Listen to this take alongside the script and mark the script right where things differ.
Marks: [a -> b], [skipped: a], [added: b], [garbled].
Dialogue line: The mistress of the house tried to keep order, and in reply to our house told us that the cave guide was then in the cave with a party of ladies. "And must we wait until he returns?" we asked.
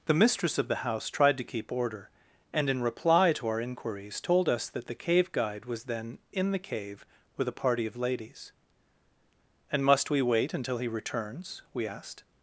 The mistress of the house tried to keep order, and in reply to our [house -> inquiries] told us that the cave guide was then in the cave with a party of ladies. "And must we wait until he returns?" we asked.